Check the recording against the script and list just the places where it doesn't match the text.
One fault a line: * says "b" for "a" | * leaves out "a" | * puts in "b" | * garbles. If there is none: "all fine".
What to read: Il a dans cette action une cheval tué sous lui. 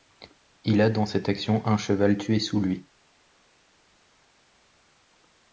* says "un" for "une"